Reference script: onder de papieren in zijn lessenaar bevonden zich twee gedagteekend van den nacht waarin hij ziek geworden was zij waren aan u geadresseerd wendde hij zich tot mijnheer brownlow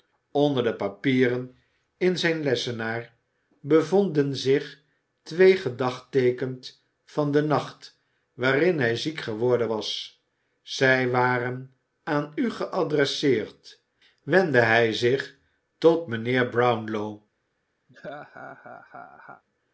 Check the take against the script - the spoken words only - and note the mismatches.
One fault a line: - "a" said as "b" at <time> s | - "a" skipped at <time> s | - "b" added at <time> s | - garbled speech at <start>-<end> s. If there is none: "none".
none